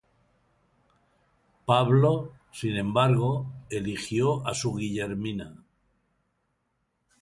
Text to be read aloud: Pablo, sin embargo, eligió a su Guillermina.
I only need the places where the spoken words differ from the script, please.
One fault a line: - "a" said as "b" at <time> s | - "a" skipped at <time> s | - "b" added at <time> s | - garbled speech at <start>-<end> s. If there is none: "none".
none